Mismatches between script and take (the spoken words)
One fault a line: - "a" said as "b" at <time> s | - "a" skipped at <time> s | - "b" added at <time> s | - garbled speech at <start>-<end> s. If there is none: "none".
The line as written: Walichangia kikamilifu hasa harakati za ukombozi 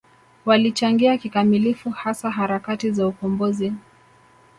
none